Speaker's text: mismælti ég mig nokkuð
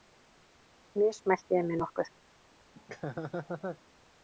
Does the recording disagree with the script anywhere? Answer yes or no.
no